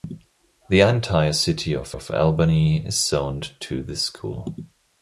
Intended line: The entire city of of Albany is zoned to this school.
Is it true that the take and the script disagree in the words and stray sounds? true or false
false